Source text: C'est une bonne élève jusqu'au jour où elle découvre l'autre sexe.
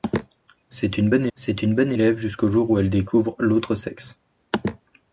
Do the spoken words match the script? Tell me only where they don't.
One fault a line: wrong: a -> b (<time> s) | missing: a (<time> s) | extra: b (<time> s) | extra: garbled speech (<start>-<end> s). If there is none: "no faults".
extra: c'est une bonne (1.3 s)